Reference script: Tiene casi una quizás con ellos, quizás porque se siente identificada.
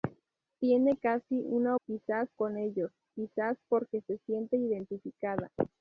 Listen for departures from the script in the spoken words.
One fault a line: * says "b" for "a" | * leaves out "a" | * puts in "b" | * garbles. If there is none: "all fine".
all fine